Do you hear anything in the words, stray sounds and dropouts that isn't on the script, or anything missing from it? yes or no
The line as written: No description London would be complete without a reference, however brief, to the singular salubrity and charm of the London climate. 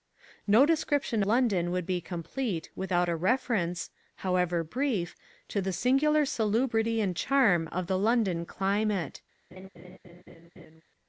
yes